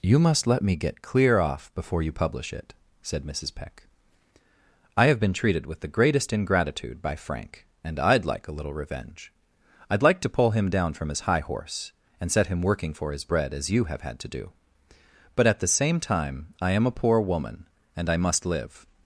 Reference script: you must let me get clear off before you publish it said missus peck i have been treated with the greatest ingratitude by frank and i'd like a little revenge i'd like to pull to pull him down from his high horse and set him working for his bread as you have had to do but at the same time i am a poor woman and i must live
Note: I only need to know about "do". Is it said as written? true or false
true